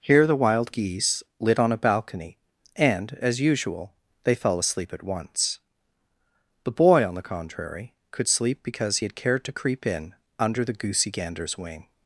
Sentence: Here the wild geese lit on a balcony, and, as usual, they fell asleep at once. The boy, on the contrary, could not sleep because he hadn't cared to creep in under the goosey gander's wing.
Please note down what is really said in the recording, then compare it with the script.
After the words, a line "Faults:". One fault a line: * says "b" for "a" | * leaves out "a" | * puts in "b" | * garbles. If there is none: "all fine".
Here the wild geese lit on a balcony, and, as usual, they fell asleep at once. The boy, on the contrary, could sleep because he had cared to creep in under the goosey gander's wing.
Faults:
* leaves out "not"
* says "had" for "hadn't"